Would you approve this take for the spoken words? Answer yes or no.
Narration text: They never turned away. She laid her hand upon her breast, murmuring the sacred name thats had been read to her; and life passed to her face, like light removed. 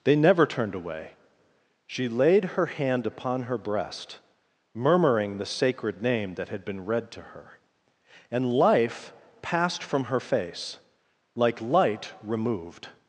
no